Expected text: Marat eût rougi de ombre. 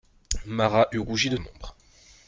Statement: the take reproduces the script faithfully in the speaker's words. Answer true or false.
true